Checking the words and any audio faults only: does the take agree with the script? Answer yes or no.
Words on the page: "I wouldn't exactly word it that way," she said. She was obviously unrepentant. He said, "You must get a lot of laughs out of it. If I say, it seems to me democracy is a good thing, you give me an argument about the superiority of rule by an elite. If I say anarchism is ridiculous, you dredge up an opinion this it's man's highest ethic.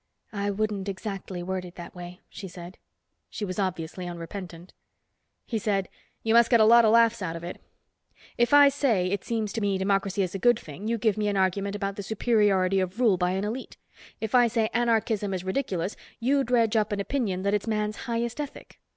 no